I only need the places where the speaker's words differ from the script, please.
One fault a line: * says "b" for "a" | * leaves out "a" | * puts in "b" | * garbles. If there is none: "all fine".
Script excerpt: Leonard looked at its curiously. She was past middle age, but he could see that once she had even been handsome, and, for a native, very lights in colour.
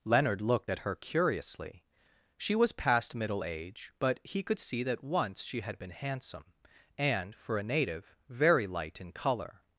* says "her" for "its"
* leaves out "even"
* says "light" for "lights"